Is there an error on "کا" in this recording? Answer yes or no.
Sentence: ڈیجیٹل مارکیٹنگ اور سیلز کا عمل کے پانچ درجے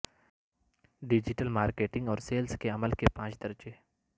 yes